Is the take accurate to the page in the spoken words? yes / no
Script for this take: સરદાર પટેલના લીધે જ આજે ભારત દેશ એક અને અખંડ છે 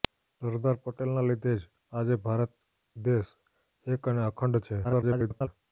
no